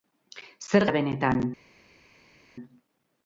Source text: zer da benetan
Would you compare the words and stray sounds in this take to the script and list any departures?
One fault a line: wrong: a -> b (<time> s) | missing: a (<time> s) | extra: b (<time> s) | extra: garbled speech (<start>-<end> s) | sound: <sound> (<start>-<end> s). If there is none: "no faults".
no faults